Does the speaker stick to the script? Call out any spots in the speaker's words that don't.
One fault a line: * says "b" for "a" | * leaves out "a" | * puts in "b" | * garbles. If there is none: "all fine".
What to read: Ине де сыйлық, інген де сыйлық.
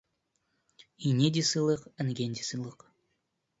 all fine